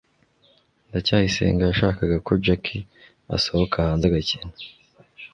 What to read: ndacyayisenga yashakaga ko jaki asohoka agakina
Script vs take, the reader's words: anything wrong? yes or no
yes